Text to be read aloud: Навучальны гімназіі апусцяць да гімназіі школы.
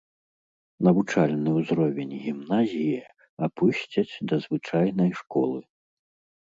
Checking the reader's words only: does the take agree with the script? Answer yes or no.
no